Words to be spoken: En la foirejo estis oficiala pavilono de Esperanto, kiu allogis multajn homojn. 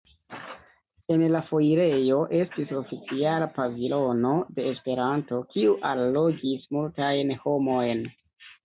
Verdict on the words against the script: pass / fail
pass